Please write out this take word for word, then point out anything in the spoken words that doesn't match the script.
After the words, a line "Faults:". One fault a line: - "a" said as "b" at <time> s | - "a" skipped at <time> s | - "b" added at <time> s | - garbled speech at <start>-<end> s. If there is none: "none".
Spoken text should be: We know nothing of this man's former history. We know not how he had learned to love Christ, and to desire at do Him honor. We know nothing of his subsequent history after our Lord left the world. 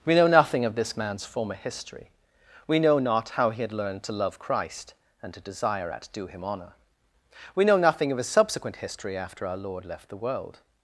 We know nothing of this man's former history. We know not how he had learned to love Christ, and to desire at do Him honor. We know nothing of his subsequent history after our Lord left the world.
Faults:
none